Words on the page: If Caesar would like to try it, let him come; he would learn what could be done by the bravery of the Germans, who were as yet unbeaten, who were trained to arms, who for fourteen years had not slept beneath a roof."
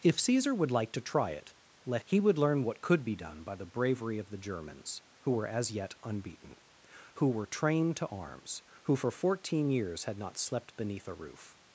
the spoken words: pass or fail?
fail